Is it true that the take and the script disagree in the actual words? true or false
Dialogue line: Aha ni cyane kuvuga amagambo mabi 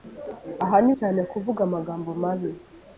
false